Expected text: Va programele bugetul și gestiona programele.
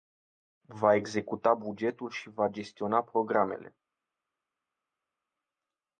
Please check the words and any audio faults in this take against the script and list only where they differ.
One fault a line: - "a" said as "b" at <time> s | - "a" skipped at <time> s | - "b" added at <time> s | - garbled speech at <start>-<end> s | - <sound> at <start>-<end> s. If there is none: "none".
- "programele" said as "executa" at 0.9 s
- "va" added at 2.3 s